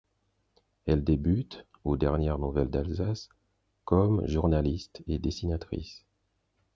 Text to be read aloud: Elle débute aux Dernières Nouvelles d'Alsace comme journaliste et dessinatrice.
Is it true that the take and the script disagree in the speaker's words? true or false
false